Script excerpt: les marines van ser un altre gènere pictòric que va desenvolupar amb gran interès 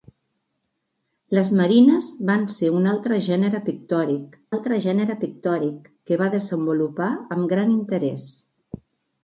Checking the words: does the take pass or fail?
fail